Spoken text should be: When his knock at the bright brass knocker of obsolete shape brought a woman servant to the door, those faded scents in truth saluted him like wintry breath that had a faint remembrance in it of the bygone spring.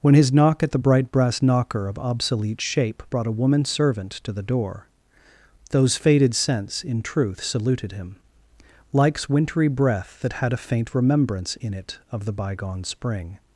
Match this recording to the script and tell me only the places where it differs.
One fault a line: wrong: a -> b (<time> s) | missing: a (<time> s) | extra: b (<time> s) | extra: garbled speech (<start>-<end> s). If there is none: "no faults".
wrong: like -> likes (8.9 s)